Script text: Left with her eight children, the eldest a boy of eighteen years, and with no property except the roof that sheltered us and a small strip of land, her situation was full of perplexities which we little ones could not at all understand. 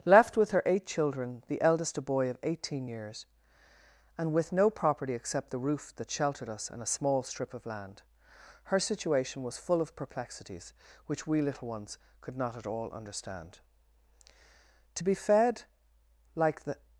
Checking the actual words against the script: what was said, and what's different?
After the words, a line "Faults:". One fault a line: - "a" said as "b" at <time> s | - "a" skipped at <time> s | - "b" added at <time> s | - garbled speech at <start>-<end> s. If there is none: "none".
Left with her eight children, the eldest a boy of eighteen years, and with no property except the roof that sheltered us and a small strip of land, her situation was full of perplexities which we little ones could not at all understand. To be fed like the
Faults:
- "To be fed like the" added at 14.9 s